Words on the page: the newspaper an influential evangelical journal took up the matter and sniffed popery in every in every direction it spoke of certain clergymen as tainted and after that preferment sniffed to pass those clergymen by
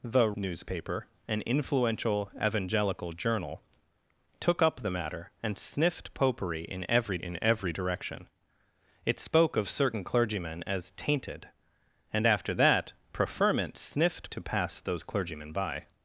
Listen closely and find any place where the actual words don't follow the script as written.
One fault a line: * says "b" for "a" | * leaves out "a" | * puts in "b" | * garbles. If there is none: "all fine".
all fine